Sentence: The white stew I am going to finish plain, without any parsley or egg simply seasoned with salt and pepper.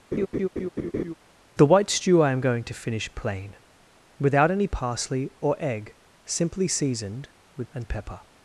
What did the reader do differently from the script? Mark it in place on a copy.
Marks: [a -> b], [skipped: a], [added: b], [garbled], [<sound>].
[laugh] The white stew I am going to finish plain, without any parsley or egg simply seasoned with [skipped: salt] and pepper.